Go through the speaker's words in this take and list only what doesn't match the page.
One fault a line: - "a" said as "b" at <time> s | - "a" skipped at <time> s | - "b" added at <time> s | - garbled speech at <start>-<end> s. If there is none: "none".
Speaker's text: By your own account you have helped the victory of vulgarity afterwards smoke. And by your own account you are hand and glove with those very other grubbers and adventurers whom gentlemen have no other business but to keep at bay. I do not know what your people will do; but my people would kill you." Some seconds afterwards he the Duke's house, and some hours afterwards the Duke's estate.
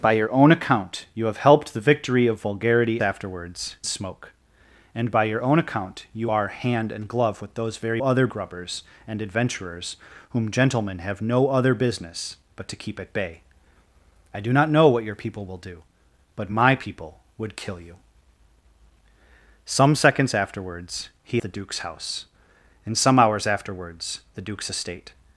none